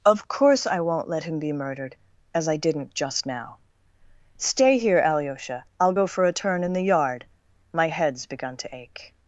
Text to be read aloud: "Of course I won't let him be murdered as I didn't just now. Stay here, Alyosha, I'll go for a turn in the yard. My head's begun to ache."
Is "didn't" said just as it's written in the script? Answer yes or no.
yes